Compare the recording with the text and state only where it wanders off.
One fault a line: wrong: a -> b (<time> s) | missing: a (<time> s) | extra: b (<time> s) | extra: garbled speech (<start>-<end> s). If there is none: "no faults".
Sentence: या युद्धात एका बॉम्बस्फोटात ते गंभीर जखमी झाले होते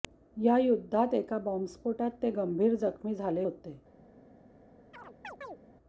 no faults